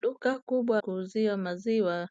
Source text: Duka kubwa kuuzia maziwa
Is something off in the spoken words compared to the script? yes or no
no